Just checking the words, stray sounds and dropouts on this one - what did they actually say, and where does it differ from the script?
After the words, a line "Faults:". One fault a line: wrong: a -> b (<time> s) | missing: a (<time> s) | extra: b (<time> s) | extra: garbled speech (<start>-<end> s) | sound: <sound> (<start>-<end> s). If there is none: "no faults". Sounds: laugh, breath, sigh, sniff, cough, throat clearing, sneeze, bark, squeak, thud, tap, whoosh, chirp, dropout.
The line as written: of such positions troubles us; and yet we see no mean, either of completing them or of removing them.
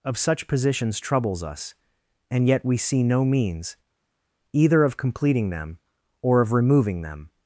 of such positions troubles us; and yet we see no means, either of completing them or of removing them.
Faults:
wrong: mean -> means (3.2 s)